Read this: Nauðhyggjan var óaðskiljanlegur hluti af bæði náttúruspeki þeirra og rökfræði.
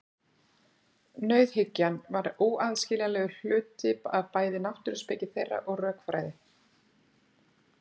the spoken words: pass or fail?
pass